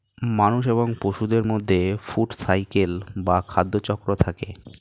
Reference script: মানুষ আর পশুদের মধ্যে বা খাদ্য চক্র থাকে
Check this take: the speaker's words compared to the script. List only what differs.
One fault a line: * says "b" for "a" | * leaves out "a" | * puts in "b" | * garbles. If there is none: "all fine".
* says "এবং" for "আর"
* puts in "ফুড সাইকেল"